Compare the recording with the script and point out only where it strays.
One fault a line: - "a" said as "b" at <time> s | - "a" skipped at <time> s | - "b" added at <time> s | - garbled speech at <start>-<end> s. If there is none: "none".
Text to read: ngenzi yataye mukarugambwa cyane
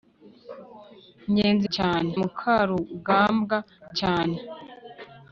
- "yataye" said as "cyane" at 1.7 s